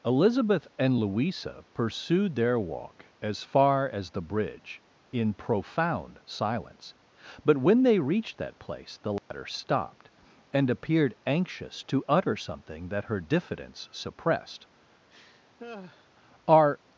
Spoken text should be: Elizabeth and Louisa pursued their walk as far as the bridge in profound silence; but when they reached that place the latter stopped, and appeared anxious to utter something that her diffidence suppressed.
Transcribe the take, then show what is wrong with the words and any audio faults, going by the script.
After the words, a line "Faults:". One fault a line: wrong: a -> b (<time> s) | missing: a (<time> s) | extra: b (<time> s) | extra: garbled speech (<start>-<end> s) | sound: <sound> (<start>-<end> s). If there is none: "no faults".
Elizabeth and Louisa pursued their walk as far as the bridge in profound silence; but when they reached that place the latter stopped, and appeared anxious to utter something that her diffidence suppressed. "Are
Faults:
sound: dropout (9.2-9.3 s)
sound: laugh (15.1-16.1 s)
extra: Are (16.5 s)